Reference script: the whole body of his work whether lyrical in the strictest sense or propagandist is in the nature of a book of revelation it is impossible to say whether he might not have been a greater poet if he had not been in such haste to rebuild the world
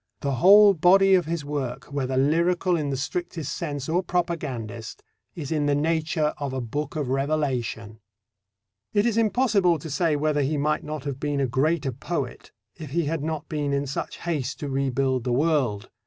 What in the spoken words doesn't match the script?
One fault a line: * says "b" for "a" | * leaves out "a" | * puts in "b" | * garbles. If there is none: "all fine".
all fine